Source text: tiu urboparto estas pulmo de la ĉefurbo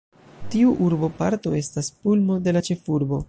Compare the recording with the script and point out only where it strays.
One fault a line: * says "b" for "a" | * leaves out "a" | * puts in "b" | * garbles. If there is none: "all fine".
all fine